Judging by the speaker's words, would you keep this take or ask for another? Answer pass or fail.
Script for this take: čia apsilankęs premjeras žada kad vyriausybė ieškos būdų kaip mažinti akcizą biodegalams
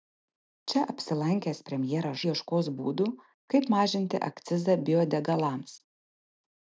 fail